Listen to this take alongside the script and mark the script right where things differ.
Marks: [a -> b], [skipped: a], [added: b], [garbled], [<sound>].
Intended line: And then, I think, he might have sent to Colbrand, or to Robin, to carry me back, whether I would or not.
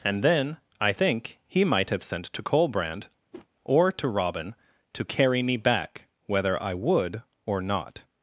And then, I think, he might have sent to Colbrand, [whoosh] or to Robin, to carry me back, whether I would or not.